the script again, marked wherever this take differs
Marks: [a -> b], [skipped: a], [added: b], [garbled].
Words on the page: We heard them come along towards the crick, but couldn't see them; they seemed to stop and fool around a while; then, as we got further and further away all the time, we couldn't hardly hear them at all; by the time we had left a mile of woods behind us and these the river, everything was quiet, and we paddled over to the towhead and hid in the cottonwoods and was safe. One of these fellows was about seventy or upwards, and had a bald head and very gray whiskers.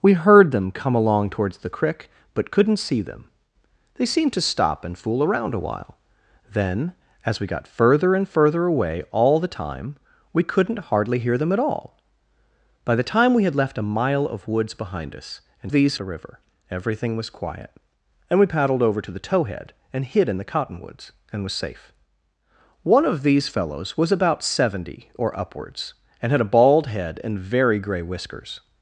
We heard them come along towards the crick, but couldn't see them; they seemed to stop and fool around a while; then, as we got further and further away all the time, we couldn't hardly hear them at all; by the time we had left a mile of woods behind us and these the river, everything was quiet, and we paddled over to the towhead and hid in the cottonwoods and was safe. One of these fellows was about seventy or upwards, and had a bald head and very gray whiskers.